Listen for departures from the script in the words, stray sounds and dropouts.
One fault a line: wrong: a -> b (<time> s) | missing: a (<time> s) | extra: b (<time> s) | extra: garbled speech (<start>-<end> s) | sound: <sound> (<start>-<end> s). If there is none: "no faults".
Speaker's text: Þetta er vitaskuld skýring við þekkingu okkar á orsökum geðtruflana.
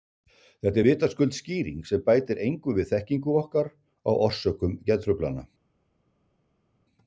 extra: sem bætir engu (1.9 s)